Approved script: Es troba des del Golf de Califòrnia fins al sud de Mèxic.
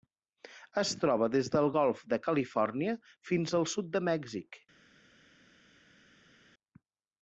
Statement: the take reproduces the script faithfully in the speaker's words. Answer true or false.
true